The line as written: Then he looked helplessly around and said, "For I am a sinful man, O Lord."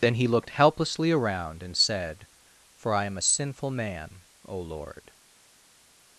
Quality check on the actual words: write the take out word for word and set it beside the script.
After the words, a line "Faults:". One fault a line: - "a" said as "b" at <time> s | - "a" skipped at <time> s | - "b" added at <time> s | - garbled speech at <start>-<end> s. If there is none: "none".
Then he looked helplessly around and said, "For I am a sinful man, O Lord."
Faults:
none